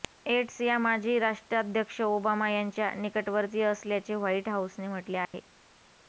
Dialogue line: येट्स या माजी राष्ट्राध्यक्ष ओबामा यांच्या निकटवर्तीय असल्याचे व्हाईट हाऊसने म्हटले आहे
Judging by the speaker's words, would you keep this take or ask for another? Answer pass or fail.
pass